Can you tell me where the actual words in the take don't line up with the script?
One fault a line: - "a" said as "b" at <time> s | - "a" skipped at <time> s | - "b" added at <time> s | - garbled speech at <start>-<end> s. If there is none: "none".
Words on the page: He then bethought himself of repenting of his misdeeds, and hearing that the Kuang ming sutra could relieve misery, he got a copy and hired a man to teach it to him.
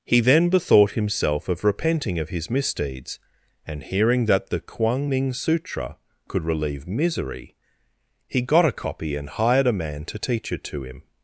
none